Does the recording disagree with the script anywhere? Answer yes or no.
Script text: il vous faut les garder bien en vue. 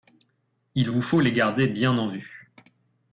no